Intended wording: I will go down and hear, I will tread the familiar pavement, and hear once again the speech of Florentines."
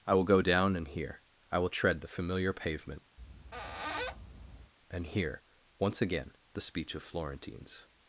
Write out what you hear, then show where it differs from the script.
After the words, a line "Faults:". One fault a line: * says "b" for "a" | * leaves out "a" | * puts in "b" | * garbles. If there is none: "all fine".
I will go down and hear, I will tread the familiar pavement, and hear once again the speech of Florentines."
Faults:
all fine